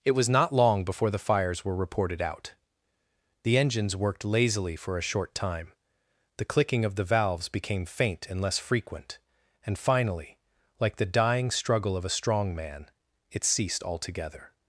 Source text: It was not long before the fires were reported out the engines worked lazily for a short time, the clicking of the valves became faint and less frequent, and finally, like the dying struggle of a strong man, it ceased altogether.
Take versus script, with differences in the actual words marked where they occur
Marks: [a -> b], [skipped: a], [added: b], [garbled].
It was not long before the fires were reported out the engines worked lazily for a short time, the clicking of the valves became faint and less frequent, and finally, like the dying struggle of a strong man, it ceased altogether.